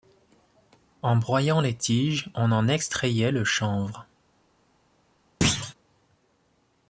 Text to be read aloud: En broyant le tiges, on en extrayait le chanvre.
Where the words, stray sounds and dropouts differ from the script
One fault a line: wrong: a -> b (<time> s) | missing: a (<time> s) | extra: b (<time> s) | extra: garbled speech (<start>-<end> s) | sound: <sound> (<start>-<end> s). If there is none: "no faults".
wrong: le -> les (1.6 s)
sound: thud (5.4-5.7 s)